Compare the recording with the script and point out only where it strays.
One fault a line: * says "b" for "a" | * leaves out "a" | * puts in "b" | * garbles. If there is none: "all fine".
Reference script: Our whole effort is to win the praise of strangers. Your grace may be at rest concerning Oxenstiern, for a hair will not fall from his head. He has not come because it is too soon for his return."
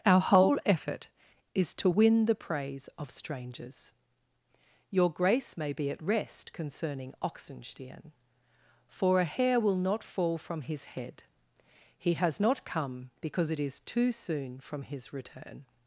* says "from" for "for"